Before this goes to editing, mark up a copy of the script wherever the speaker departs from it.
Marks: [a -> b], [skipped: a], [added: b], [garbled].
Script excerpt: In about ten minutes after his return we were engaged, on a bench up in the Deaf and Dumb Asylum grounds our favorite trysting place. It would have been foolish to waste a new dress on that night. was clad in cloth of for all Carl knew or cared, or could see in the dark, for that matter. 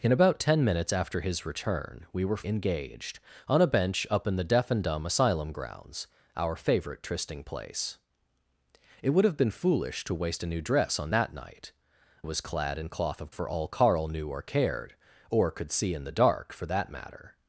In about ten minutes after his return we were engaged, on a bench up in the Deaf and Dumb Asylum grounds our favorite trysting place. It would have been foolish to waste a new dress on that night. was clad in cloth of for all Carl knew or cared, or could see in the dark, for that matter.